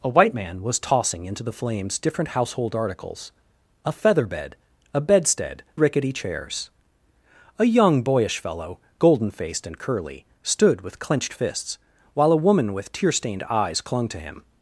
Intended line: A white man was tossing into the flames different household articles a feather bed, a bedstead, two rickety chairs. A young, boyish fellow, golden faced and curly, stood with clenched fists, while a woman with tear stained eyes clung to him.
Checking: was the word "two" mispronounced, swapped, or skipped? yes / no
yes